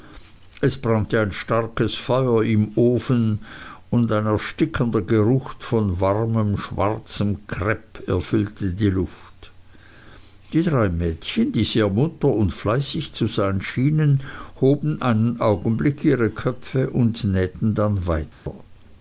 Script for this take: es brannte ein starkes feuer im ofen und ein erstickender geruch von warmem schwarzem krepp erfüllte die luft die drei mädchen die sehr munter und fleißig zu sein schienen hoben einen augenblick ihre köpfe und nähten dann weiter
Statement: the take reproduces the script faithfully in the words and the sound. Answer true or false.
false